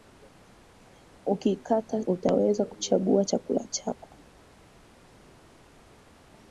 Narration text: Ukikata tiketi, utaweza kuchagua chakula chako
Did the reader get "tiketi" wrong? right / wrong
wrong